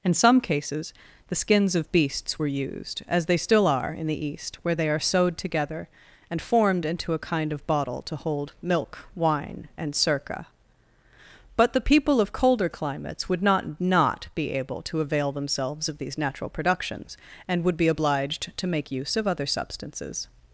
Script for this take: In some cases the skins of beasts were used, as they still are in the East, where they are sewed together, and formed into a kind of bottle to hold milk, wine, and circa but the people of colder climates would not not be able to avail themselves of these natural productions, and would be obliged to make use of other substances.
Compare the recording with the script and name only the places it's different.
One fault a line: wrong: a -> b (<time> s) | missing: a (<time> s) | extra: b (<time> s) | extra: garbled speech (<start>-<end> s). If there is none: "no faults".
no faults